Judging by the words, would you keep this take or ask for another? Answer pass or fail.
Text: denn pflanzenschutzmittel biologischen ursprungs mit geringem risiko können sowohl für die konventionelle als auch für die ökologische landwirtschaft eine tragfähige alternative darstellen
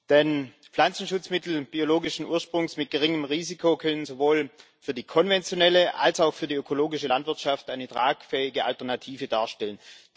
pass